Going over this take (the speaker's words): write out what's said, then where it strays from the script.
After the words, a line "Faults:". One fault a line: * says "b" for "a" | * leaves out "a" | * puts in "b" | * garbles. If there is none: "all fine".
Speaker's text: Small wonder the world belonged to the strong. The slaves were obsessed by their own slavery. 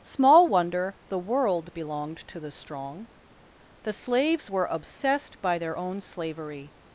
Small wonder the world belonged to the strong. The slaves were obsessed by their own slavery.
Faults:
all fine